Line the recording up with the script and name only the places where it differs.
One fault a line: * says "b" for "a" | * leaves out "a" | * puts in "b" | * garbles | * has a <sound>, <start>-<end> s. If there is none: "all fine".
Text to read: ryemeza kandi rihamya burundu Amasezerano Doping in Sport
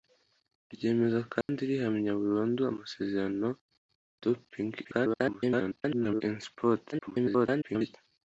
* has a dropout, 1.4-1.5 s
* garbles
* garbles